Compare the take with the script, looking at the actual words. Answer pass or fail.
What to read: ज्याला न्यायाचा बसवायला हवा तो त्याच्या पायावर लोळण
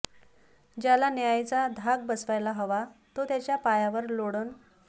fail